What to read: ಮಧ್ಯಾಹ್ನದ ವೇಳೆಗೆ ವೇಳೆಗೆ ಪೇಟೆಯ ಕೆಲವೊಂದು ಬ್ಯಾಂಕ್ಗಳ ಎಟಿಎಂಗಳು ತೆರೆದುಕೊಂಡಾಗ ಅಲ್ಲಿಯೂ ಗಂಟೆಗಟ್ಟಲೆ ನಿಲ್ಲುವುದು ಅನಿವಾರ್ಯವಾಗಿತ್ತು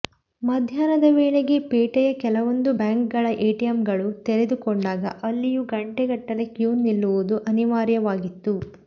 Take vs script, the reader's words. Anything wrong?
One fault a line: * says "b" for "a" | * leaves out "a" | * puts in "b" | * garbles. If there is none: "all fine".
* leaves out "ವೇಳೆಗೆ"
* puts in "ಕ್ಯೂ"